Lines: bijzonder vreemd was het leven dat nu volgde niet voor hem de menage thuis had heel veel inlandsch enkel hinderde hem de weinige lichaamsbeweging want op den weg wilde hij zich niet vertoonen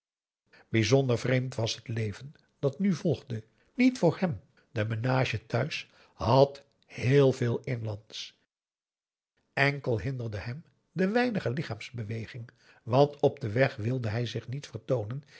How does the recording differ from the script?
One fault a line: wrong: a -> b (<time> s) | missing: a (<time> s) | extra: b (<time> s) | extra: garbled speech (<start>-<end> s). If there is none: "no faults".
no faults